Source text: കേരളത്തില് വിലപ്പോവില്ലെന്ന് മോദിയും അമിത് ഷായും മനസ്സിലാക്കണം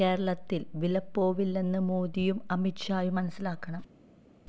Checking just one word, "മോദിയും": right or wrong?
right